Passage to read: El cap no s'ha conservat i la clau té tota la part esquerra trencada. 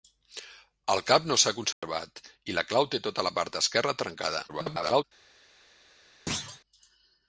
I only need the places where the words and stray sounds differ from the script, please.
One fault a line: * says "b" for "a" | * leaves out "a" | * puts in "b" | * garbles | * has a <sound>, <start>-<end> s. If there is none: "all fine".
* has a dropout, 1.7-1.8 s
* garbles
* has a thud, 6.3-6.6 s